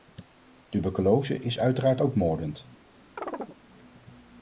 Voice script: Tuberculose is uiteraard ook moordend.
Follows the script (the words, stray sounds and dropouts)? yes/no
no